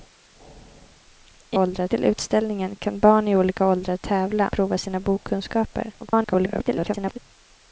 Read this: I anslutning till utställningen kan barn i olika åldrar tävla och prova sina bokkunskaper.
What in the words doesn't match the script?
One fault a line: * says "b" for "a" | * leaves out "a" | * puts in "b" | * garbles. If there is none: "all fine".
* says "åldrar" for "anslutning"
* leaves out "och"
* garbles